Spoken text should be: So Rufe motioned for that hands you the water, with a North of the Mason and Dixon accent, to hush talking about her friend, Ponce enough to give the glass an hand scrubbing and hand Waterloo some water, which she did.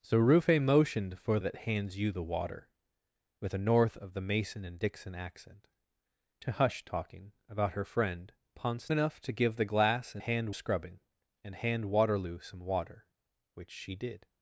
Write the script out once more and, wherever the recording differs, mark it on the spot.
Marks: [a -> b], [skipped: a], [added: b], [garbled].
So Rufe motioned for that hands you the water, with a North of the Mason and Dixon accent, to hush talking about her friend, Ponce enough to give the glass an hand scrubbing and hand Waterloo some water, which she did.